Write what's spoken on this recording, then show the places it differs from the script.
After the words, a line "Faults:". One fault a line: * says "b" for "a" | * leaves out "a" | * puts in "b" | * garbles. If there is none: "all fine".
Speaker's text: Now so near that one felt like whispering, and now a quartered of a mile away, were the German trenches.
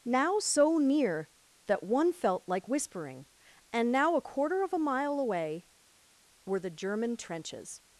Now so near that one felt like whispering, and now a quarter of a mile away, were the German trenches.
Faults:
* says "quarter" for "quartered"